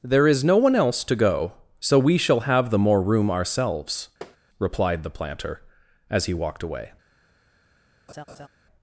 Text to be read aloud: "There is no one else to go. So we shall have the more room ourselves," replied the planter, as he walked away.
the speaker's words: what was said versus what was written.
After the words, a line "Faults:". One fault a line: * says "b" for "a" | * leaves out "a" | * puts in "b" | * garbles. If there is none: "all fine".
"There is no one else to go. So we shall have the more room ourselves," replied the planter, as he walked away.
Faults:
all fine